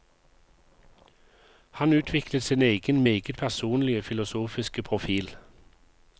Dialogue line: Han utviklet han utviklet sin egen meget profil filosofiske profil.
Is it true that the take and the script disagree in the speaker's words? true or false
true